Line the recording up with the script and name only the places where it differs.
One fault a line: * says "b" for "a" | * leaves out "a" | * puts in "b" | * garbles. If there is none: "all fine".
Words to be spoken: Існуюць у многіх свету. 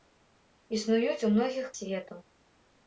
all fine